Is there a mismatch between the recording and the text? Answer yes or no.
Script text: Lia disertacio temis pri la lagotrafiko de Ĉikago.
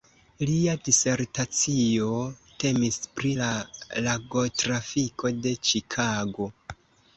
no